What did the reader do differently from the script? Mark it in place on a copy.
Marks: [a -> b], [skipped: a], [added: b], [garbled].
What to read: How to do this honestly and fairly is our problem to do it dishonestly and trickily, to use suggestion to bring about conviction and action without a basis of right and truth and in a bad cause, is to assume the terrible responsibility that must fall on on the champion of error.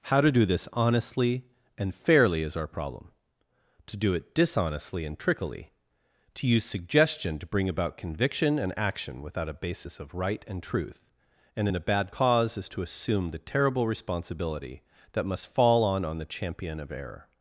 How to do this honestly and fairly is our problem to do it dishonestly and trickily, to use suggestion to bring about conviction and action without a basis of right and truth and in a bad cause, is to assume the terrible responsibility that must fall on on the champion of error.